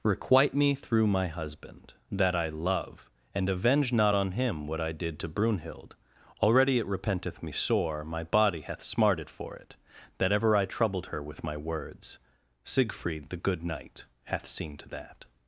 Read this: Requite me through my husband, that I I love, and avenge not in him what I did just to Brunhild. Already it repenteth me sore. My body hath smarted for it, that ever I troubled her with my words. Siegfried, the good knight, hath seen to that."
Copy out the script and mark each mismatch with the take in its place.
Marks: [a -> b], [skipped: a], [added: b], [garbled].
Requite me through my husband, that I [skipped: I] love, and avenge not [in -> on] him what I did [skipped: just] to Brunhild. Already it repenteth me sore. My body hath smarted for it, that ever I troubled her with my words. Siegfried, the good knight, hath seen to that."